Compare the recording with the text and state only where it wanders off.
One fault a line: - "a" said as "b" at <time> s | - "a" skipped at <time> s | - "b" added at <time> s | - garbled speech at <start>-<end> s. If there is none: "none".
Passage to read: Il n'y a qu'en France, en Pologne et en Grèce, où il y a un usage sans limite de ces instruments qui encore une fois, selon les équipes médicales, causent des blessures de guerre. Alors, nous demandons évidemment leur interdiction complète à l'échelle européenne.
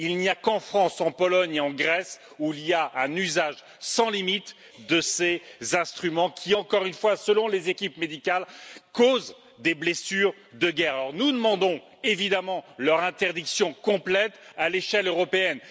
none